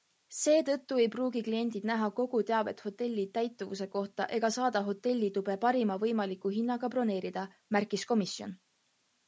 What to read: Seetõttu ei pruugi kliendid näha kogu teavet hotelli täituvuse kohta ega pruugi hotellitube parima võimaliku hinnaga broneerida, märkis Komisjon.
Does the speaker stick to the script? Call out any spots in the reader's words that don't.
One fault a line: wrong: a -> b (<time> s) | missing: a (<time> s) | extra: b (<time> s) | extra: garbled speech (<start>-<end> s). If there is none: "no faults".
wrong: pruugi -> saada (4.6 s)